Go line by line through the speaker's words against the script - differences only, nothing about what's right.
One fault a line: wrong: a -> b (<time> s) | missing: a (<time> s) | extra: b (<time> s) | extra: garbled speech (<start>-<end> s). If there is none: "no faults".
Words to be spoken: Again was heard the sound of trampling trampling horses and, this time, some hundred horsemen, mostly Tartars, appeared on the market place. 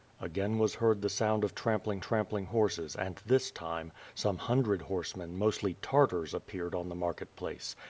no faults